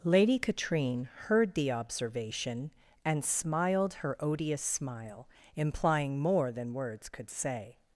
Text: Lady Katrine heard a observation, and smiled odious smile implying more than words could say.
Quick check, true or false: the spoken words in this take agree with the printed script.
false